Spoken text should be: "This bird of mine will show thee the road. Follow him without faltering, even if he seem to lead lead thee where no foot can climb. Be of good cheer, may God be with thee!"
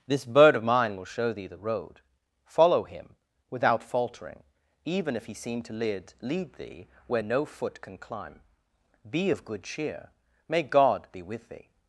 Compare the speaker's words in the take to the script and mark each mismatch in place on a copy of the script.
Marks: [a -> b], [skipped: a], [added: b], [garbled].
"This bird of mine will show thee the road. Follow him without faltering, even if he seem to lead lead thee where no foot can climb. Be of good cheer, may God be with thee!"